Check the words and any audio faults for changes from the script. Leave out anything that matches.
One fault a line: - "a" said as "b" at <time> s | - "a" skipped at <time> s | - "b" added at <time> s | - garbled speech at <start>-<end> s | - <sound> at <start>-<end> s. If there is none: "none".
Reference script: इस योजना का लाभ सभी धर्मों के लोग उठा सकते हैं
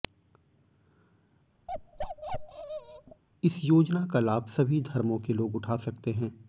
- bark at 1.7-3.2 s